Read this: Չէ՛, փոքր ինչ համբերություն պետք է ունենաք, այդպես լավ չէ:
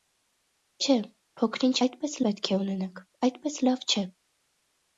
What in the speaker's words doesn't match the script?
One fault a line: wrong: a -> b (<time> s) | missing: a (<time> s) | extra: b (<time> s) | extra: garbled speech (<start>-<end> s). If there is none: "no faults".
wrong: համբերություն -> այդպես (1.9 s)